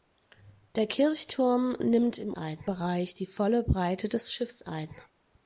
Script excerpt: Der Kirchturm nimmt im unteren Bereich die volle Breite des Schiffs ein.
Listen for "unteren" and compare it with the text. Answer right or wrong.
wrong